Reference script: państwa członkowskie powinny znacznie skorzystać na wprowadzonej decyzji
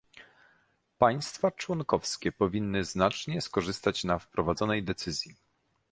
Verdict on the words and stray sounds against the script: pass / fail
pass